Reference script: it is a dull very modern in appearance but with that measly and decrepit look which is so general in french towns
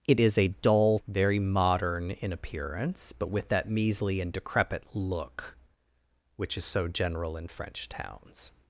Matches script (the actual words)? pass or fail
pass